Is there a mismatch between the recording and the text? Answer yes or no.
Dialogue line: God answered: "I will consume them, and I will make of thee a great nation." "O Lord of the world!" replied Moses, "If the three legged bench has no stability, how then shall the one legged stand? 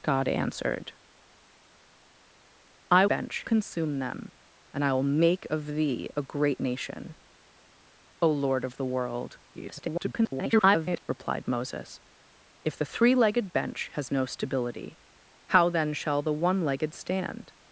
yes